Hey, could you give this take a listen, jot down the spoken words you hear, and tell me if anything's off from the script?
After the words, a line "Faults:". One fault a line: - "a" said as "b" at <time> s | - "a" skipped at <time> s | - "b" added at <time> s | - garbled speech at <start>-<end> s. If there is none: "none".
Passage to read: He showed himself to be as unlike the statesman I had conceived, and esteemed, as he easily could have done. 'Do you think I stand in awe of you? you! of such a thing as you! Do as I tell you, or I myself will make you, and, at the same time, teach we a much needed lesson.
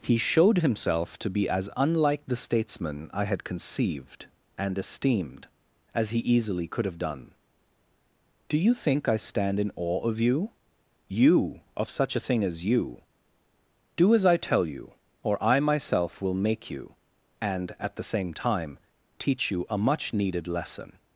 He showed himself to be as unlike the statesman I had conceived, and esteemed, as he easily could have done. 'Do you think I stand in awe of you? you! of such a thing as you! Do as I tell you, or I myself will make you, and, at the same time, teach you a much needed lesson.
Faults:
- "we" said as "you" at 19.5 s